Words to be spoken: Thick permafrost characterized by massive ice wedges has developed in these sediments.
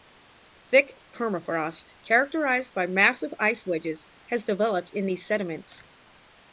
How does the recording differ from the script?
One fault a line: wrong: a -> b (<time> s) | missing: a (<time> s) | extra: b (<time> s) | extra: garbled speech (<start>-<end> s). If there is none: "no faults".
no faults